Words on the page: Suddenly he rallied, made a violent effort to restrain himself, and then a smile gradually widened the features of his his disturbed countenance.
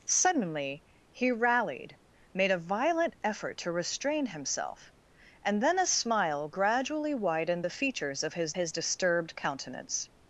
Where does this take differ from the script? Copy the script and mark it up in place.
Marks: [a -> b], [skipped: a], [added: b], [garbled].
Suddenly he rallied, made a violent effort to restrain himself, and then a smile gradually widened the features of his his disturbed countenance.